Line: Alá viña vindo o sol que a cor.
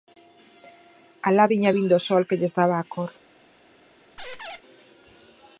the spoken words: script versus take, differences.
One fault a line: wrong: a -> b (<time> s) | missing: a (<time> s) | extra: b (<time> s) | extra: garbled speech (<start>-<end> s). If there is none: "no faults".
extra: lles daba (2.4 s)